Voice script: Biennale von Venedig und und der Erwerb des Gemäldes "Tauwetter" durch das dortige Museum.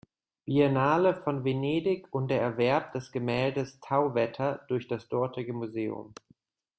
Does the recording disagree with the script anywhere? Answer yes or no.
yes